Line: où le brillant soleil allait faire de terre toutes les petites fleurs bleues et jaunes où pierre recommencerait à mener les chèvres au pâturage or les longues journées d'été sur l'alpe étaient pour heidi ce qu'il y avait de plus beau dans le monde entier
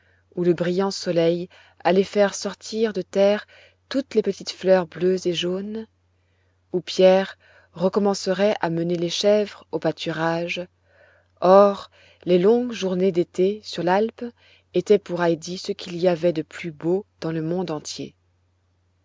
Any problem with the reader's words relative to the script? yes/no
yes